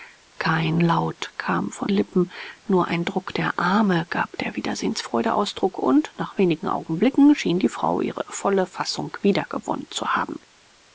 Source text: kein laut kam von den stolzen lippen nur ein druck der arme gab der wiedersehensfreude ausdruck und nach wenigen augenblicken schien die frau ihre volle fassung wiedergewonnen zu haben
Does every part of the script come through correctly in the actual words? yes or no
no